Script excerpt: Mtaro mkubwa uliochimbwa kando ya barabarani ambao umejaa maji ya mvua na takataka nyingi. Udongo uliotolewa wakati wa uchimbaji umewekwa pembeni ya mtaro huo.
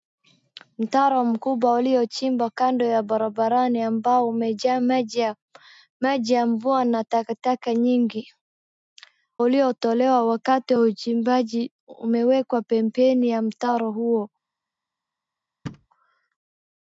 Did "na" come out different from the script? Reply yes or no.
no